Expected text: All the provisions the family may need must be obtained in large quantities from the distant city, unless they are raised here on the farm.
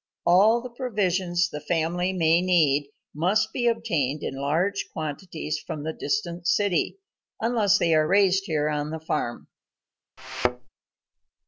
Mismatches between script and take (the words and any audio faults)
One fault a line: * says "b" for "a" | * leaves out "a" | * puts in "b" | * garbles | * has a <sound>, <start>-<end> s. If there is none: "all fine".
* has a thud, 10.2-10.7 s